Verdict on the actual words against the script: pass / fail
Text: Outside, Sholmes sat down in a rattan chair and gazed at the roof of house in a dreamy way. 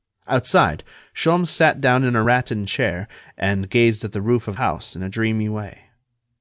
pass